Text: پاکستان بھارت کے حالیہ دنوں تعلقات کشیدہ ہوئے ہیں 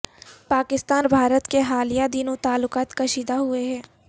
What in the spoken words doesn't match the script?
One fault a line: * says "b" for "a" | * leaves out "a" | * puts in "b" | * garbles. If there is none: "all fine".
all fine